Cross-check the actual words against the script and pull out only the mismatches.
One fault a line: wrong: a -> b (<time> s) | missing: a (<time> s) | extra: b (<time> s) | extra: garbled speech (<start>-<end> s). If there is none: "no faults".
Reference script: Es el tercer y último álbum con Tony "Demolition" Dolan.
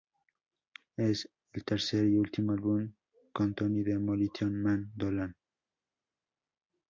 extra: Man (4.6 s)